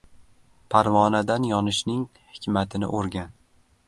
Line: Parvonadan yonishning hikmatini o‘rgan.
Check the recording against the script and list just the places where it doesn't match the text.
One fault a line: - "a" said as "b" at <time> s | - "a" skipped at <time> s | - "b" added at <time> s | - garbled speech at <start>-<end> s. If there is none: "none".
none